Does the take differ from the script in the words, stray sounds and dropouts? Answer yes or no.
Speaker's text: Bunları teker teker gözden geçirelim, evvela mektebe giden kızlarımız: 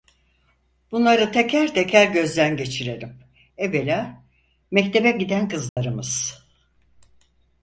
yes